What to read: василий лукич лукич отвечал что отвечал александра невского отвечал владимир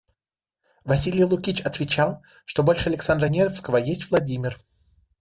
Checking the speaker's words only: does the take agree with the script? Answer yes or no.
no